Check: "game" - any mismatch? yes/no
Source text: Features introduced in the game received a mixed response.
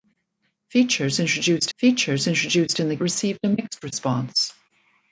yes